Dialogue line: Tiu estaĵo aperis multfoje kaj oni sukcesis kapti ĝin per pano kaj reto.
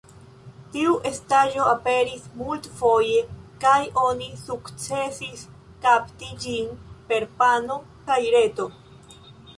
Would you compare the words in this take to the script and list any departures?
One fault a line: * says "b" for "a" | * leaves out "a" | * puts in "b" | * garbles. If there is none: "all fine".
all fine